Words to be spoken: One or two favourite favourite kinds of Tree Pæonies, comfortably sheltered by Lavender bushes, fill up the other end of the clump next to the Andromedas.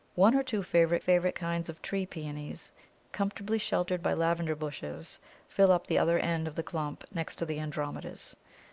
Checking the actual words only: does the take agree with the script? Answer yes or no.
yes